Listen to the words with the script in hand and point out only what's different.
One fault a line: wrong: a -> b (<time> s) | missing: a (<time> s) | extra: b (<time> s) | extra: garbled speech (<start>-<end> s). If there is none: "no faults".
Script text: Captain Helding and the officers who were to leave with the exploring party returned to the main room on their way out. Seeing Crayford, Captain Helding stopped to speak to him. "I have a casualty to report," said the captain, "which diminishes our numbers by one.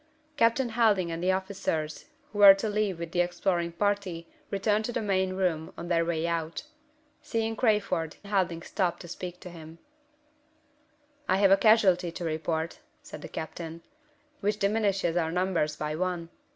missing: Captain (8.2 s)